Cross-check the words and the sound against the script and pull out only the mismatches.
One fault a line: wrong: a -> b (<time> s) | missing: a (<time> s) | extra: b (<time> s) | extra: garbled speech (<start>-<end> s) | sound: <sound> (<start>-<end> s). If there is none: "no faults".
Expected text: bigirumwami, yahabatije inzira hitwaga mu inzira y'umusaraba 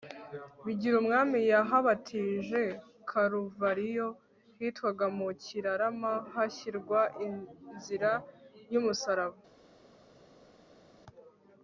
wrong: inzira -> karuvariyo (3.1 s)
extra: kirarama hashyirwa (5.4 s)